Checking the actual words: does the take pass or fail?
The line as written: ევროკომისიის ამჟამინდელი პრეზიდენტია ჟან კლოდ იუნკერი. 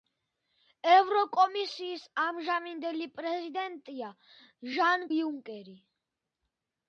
fail